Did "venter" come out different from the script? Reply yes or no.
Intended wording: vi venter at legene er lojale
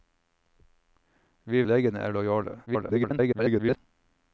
yes